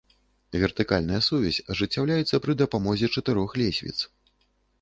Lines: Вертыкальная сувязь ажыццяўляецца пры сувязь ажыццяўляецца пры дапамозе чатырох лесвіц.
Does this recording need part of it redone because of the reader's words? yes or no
yes